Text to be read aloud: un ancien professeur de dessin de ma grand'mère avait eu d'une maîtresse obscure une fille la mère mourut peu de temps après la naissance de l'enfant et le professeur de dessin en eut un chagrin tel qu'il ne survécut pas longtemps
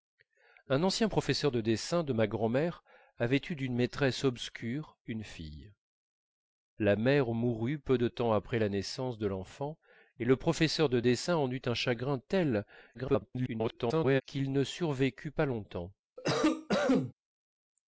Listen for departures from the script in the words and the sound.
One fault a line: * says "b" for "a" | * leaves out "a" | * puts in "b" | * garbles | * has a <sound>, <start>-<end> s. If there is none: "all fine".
* garbles
* has a cough, 16.2-17.1 s